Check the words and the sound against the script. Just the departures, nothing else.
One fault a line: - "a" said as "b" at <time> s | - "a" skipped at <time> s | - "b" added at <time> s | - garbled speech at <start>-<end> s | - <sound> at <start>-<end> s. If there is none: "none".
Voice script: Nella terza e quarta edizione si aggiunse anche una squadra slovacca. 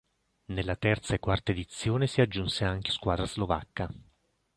- "una" skipped at 2.9 s